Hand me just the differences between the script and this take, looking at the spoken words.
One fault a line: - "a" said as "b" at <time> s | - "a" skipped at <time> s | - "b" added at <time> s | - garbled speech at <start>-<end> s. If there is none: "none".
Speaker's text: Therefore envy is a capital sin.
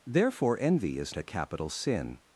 none